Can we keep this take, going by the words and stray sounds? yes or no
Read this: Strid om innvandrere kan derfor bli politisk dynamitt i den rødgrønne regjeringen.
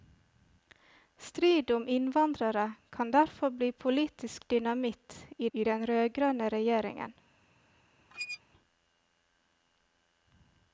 no